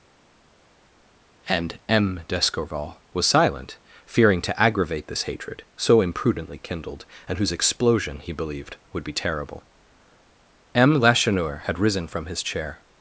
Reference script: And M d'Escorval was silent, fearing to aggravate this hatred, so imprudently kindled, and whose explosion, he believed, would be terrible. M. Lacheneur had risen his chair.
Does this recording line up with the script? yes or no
no